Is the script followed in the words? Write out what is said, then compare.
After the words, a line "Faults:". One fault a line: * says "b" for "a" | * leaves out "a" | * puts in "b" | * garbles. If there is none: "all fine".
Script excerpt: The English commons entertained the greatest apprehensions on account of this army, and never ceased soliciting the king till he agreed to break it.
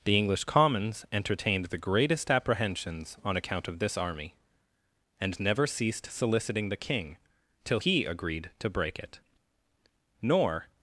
The English commons entertained the greatest apprehensions on account of this army, and never ceased soliciting the king till he agreed to break it. Nor
Faults:
* puts in "Nor"